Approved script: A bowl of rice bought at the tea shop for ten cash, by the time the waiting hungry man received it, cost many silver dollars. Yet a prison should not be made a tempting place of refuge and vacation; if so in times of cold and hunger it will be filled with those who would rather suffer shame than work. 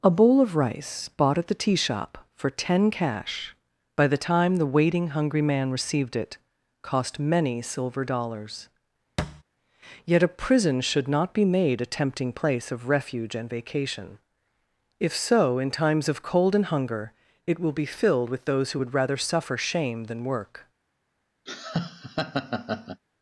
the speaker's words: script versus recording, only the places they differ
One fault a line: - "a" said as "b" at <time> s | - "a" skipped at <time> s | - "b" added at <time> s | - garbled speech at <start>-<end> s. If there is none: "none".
none